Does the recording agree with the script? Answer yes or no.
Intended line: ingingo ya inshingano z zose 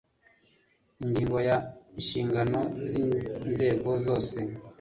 no